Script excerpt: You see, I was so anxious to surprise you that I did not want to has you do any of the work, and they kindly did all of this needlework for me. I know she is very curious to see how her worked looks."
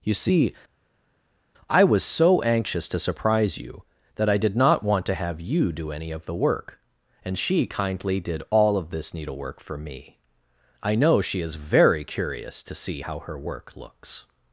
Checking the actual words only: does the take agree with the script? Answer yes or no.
no